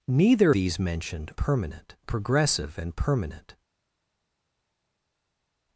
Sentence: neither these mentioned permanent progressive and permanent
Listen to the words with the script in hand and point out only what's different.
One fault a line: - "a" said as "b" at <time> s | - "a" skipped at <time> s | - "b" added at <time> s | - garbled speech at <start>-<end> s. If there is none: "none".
none